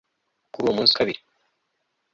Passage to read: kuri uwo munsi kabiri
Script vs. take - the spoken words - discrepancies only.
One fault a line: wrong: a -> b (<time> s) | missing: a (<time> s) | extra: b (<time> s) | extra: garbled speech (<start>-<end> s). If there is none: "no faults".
no faults